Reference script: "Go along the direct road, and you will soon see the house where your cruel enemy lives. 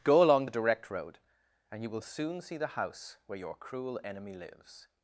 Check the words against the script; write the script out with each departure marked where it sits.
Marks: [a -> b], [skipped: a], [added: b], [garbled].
"Go along the direct road, and you will soon see the house where your cruel enemy lives.